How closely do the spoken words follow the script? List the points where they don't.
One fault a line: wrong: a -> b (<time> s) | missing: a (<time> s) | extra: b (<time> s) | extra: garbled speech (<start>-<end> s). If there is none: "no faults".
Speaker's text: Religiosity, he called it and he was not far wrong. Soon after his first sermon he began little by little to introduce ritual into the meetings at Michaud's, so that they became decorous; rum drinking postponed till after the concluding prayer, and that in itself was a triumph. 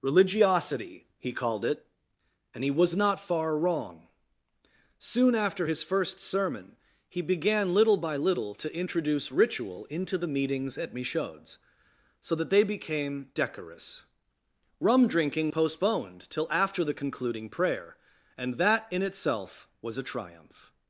no faults